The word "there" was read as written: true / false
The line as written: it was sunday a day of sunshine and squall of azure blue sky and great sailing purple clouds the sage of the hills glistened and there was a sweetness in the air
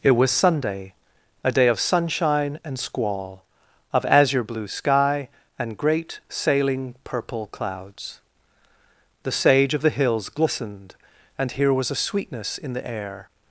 false